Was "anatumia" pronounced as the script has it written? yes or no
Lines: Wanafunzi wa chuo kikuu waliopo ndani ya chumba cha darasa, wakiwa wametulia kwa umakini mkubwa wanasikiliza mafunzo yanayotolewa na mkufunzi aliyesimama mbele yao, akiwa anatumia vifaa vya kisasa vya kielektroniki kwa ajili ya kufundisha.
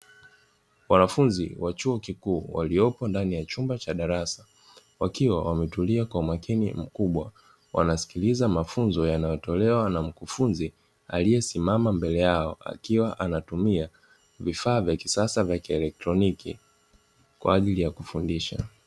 yes